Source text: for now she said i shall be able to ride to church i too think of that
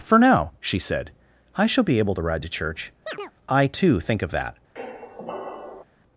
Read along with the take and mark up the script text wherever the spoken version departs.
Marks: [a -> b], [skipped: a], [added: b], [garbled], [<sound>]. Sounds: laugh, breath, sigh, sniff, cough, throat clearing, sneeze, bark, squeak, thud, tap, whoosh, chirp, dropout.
for now she said i shall be able to ride to church [chirp] i too think of that [squeak]